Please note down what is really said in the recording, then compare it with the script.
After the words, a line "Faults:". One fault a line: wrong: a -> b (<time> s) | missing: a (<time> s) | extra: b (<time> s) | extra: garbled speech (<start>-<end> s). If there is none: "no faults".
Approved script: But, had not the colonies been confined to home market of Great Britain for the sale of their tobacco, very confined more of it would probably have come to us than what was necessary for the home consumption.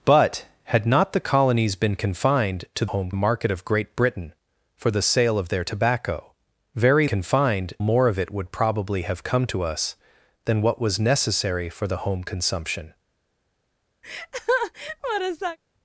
But, had not the colonies been confined to home market of Great Britain for the sale of their tobacco, very confined more of it would probably have come to us than what was necessary for the home consumption.
Faults:
no faults